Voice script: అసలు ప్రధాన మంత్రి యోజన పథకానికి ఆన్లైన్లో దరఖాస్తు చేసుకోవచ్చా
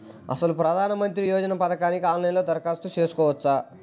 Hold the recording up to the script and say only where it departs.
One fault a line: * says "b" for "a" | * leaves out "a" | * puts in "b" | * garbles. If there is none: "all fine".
all fine